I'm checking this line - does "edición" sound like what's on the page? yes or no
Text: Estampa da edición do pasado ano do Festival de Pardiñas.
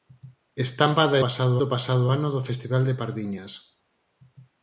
no